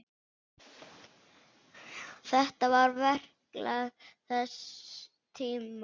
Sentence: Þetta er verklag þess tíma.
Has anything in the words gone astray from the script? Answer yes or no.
yes